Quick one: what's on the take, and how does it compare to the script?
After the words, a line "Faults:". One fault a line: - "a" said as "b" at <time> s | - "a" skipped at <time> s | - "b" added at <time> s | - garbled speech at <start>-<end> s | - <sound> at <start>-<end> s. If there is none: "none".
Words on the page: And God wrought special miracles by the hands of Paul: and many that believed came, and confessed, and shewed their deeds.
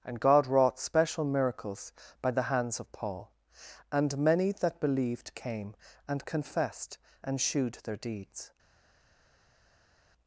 And God wrought special miracles by the hands of Paul: and many that believed came, and confessed, and shewed their deeds.
Faults:
none